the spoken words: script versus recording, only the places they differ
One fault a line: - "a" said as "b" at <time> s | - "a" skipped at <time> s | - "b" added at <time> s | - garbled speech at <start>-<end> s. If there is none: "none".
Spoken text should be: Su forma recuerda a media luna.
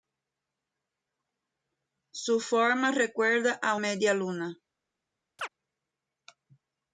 none